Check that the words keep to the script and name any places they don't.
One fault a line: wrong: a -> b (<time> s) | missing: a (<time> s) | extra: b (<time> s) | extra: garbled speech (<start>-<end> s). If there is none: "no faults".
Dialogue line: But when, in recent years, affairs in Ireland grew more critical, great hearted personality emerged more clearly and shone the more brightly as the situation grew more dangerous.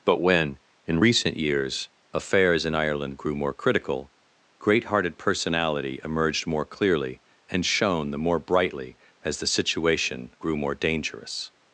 no faults